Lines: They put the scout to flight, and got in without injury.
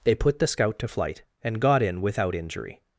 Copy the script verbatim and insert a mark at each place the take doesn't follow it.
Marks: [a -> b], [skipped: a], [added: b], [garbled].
They put the scout to flight, and got in without injury.